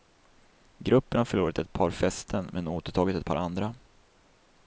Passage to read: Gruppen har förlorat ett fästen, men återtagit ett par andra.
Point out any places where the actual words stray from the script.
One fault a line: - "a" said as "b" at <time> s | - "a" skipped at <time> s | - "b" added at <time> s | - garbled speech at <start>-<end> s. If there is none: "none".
- "par" added at 1.7 s